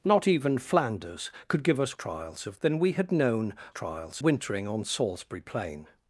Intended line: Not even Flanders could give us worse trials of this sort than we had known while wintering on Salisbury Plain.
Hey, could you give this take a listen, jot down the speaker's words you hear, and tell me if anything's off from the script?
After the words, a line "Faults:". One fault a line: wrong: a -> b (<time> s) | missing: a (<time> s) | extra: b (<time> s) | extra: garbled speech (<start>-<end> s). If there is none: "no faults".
Not even Flanders could give us trials of than we had known trials wintering on Salisbury Plain.
Faults:
missing: worse (1.9 s)
missing: this sort (2.6 s)
wrong: while -> trials (3.7 s)